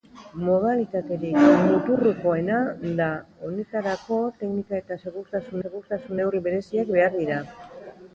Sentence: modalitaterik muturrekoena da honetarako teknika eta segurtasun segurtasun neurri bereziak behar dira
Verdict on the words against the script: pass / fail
pass